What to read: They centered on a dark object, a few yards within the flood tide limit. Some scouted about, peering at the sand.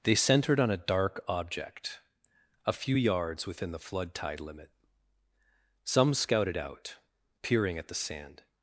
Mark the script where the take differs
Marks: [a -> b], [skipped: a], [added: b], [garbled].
They centered on a dark object, a few yards within the flood tide limit. Some scouted [about, -> out] peering at the sand.